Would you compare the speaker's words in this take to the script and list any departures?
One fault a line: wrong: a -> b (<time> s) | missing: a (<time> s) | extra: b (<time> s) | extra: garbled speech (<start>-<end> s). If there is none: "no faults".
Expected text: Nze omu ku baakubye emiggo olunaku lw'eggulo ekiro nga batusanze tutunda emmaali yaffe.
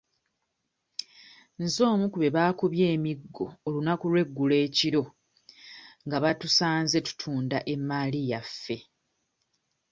extra: be (2.2 s)